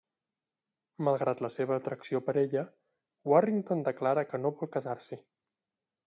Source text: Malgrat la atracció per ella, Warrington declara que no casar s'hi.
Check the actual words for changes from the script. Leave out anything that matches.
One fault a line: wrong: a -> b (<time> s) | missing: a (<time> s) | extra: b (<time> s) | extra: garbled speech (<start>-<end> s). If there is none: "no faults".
extra: seva (1.6 s)
extra: vol (4.6 s)